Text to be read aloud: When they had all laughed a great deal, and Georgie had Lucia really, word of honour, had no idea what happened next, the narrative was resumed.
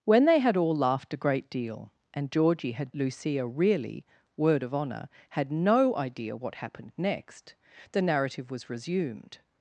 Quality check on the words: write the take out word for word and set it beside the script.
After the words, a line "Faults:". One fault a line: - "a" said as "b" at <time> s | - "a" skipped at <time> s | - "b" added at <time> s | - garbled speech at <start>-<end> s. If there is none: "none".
When they had all laughed a great deal, and Georgie had Lucia really, word of honour, had no idea what happened next, the narrative was resumed.
Faults:
none